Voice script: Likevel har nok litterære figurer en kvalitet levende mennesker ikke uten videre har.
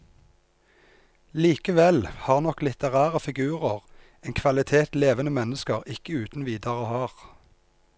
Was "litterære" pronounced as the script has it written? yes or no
yes